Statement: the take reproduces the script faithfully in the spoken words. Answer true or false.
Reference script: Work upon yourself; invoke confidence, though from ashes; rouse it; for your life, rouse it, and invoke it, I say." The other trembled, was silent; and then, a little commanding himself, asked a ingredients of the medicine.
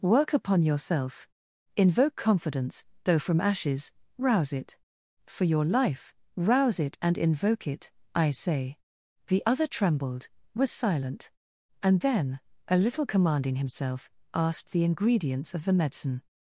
false